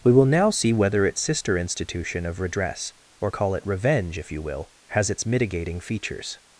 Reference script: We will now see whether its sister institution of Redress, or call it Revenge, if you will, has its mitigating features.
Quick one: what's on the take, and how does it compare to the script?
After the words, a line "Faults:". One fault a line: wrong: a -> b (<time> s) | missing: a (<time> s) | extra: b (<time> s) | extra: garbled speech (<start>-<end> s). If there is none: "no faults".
We will now see whether its sister institution of Redress, or call it Revenge, if you will, has its mitigating features.
Faults:
no faults